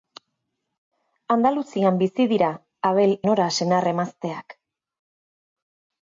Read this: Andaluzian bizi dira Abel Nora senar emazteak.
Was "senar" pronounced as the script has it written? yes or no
yes